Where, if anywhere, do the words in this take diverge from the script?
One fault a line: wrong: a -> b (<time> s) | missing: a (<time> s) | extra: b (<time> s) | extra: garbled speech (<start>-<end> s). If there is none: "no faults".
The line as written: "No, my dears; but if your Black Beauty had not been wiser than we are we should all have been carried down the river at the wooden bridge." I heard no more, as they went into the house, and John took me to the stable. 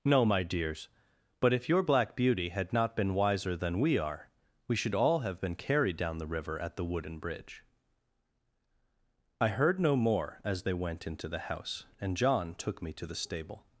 no faults